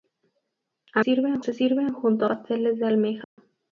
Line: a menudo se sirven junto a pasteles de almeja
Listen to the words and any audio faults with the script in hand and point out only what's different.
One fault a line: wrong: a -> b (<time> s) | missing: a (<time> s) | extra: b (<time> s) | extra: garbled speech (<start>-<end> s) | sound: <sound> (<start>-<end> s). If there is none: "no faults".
wrong: menudo -> sirven (1.0 s)
missing: a (2.2 s)
sound: dropout (3.2-3.4 s)